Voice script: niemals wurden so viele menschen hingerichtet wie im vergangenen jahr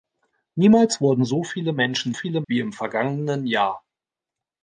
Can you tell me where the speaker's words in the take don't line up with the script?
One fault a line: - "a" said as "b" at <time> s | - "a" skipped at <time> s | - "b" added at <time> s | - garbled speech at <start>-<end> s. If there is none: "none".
- "hingerichtet" said as "viele" at 2.1 s